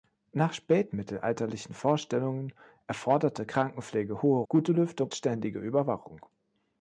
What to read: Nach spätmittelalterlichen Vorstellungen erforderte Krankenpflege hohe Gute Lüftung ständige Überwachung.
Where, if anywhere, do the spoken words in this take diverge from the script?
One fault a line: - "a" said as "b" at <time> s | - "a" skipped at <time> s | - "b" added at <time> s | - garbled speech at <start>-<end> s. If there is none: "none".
none